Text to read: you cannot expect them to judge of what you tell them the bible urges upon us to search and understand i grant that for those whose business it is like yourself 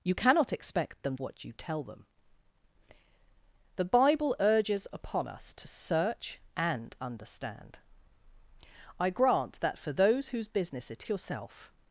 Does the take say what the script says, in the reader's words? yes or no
no